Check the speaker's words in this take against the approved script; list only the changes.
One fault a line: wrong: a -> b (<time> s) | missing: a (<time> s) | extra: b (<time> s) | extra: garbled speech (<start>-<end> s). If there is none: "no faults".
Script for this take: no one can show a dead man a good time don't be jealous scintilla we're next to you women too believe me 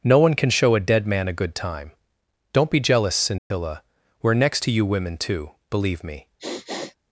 no faults